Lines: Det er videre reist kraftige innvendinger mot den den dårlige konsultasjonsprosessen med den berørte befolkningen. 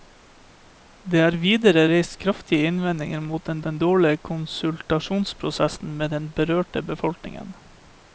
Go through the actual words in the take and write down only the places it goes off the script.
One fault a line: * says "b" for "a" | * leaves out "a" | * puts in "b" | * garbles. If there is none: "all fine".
all fine